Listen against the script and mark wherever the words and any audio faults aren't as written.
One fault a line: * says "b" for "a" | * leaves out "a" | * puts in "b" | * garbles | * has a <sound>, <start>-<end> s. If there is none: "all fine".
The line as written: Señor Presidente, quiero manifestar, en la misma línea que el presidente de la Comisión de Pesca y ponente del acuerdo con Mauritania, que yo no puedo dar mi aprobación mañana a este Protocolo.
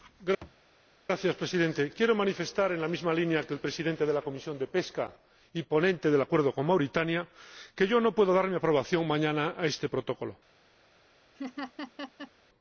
* has a thud, 0.4-0.6 s
* has a laugh, 11.3-12.3 s